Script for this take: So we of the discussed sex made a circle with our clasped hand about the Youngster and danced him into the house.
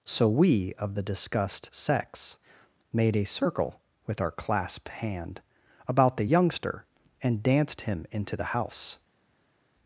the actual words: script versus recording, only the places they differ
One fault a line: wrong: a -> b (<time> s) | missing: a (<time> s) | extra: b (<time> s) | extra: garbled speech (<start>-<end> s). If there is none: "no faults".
no faults